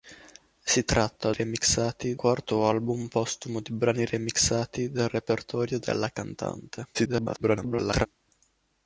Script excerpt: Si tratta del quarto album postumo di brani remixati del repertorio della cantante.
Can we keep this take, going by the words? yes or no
no